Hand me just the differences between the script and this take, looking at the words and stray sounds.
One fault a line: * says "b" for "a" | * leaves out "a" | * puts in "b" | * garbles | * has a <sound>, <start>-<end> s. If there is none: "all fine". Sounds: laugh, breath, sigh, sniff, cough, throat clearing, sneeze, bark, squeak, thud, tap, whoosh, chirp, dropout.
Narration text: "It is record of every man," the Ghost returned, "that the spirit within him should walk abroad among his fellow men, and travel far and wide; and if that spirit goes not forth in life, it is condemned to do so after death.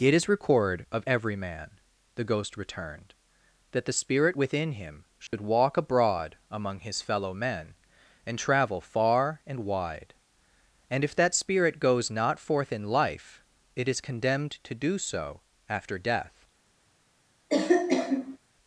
* has a dropout, 5.3-5.3 s
* has a cough, 17.5-18.4 s